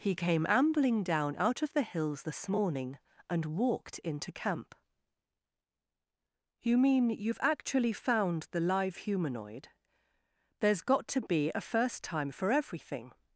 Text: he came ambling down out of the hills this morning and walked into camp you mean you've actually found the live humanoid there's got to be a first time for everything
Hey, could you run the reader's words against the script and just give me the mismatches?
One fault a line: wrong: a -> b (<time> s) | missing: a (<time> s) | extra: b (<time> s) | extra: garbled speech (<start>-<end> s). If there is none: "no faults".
no faults